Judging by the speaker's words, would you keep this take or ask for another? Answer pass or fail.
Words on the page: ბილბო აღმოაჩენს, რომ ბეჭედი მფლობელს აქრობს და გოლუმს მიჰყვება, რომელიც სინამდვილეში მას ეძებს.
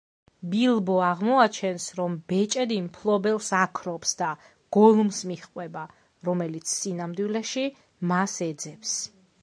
pass